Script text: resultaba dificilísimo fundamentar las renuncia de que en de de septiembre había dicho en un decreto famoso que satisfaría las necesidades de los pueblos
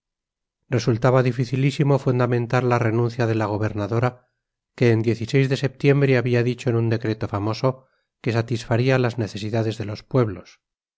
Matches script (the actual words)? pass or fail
fail